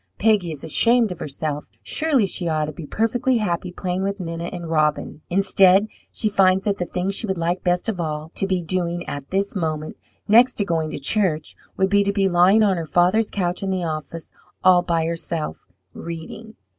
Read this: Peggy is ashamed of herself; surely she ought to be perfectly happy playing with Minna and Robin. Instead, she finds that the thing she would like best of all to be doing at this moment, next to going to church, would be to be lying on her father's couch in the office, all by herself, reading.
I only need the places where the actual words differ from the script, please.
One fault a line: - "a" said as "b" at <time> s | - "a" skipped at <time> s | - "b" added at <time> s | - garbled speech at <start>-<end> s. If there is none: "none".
none